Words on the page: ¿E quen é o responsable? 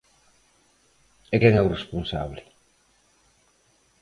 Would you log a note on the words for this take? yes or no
no